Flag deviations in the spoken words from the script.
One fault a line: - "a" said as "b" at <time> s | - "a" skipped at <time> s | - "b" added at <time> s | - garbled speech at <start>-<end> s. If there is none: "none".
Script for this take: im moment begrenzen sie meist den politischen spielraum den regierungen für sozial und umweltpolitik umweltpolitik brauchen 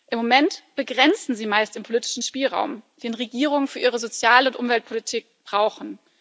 - "ihre" added at 3.8 s
- "umweltpolitik" skipped at 5.2 s